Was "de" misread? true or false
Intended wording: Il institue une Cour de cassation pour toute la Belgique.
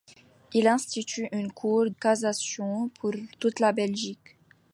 true